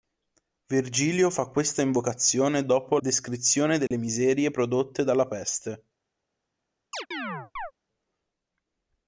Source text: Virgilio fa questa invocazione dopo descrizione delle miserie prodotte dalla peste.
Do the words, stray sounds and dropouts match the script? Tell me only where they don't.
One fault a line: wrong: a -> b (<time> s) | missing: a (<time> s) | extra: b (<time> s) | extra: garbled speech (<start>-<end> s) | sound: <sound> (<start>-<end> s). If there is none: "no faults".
sound: dropout (3.9-3.9 s)
sound: chirp (6.9-7.7 s)